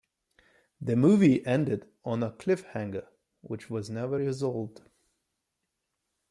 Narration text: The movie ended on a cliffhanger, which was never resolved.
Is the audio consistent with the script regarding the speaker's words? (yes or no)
yes